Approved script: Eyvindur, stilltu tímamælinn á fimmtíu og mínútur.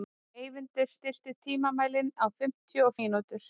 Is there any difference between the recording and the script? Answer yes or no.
no